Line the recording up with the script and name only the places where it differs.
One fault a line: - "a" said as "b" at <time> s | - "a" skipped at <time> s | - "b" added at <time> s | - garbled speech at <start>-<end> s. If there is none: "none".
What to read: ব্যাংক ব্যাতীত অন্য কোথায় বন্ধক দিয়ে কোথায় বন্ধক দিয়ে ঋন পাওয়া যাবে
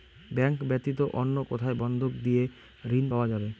- "কোথায় বন্ধক দিয়ে" skipped at 2.4 s